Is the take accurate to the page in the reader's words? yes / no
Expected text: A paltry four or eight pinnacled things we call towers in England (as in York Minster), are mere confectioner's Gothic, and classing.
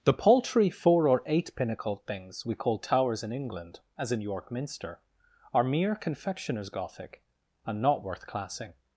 no